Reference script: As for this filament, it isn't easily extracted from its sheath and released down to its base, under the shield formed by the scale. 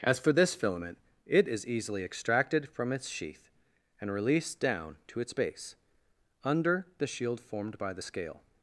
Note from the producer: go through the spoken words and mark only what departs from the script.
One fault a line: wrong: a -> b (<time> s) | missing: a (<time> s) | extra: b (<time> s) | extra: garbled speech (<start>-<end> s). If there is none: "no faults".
wrong: isn't -> is (1.5 s)